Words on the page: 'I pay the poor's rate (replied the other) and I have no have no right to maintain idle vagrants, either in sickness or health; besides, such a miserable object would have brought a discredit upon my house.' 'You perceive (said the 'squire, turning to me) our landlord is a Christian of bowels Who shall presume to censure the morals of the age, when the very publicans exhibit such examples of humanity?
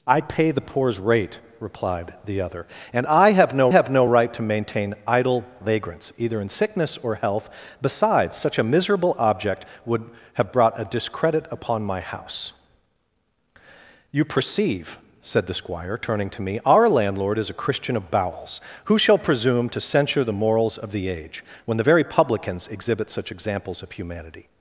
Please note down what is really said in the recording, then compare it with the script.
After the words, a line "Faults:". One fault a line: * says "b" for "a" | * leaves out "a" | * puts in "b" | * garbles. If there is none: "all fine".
'I pay the poor's rate (replied the other) and I have no have no right to maintain idle vagrants, either in sickness or health; besides, such a miserable object would have brought a discredit upon my house.' 'You perceive (said the 'squire, turning to me) our landlord is a Christian of bowels Who shall presume to censure the morals of the age, when the very publicans exhibit such examples of humanity?
Faults:
all fine